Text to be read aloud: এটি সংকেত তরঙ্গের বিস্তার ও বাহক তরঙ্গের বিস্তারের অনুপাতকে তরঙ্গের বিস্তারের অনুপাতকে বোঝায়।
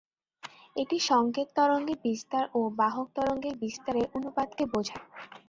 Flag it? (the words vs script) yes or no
yes